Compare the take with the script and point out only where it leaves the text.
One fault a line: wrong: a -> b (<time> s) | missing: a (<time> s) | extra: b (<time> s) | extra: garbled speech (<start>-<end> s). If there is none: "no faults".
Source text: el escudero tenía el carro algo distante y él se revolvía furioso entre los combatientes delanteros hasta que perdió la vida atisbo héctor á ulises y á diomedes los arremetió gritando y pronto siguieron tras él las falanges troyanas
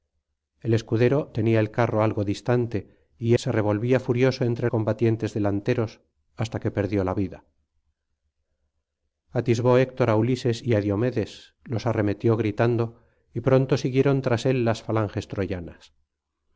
missing: él (3.4 s)
missing: los (4.7 s)